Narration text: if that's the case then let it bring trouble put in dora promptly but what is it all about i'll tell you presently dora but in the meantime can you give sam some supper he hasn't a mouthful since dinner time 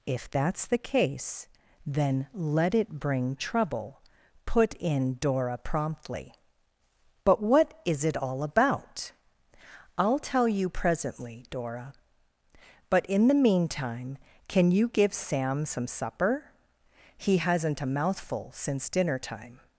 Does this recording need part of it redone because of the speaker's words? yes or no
no